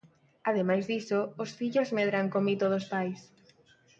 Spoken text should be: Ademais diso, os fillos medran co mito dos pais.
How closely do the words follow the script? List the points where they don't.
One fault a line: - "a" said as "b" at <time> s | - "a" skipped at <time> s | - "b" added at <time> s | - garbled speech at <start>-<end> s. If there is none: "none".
none